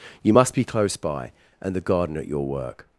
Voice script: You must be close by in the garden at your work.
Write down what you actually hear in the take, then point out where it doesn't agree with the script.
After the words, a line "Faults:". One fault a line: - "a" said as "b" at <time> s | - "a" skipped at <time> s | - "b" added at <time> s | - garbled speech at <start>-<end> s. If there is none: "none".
You must be close by and the garden at your work.
Faults:
- "in" said as "and" at 1.6 s